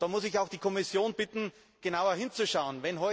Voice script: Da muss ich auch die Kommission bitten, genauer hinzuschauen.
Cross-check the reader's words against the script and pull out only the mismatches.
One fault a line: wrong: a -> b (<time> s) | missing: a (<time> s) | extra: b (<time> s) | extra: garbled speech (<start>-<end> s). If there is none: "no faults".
no faults